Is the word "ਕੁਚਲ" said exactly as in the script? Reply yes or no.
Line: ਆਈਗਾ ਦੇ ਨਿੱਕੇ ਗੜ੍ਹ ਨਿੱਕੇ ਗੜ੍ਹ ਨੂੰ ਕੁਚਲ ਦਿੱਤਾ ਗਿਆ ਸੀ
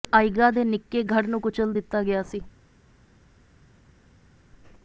yes